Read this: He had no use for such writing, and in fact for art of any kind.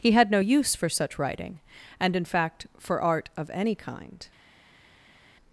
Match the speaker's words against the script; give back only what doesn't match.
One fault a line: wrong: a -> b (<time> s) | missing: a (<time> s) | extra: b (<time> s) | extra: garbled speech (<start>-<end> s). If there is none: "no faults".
no faults